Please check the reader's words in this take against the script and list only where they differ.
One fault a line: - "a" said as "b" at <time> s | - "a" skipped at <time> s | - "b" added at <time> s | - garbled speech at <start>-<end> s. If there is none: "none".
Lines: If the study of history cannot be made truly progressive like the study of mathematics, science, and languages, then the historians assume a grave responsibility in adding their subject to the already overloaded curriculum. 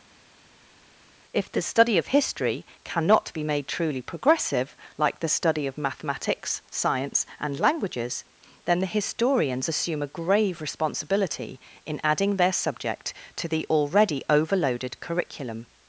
none